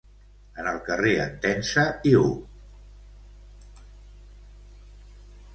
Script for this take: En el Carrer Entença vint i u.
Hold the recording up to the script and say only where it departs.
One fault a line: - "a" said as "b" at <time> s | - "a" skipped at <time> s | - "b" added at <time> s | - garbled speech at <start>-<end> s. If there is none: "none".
- "vint" skipped at 1.8 s